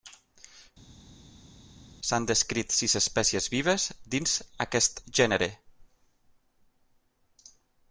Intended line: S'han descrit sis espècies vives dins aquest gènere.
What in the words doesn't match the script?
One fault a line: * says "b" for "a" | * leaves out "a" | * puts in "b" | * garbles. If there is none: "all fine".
all fine